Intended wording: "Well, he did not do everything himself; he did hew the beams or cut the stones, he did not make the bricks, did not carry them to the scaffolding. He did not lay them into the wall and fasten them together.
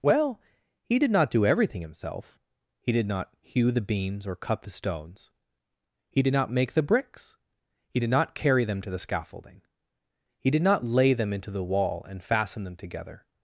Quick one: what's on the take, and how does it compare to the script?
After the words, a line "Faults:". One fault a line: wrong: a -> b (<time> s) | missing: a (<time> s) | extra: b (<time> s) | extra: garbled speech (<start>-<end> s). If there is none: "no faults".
"Well, he did not do everything himself; he did not hew the beams or cut the stones, he did not make the bricks, he did not carry them to the scaffolding. He did not lay them into the wall and fasten them together.
Faults:
extra: not (3.1 s)
extra: he (7.9 s)